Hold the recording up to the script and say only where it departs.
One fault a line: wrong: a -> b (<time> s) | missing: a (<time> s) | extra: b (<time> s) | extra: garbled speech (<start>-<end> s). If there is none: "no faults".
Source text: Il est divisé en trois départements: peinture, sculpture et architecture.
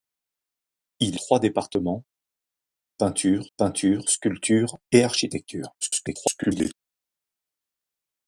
missing: est divisé en (1.2 s)
extra: peinture (3.6 s)
extra: garbled speech (5.8-6.7 s)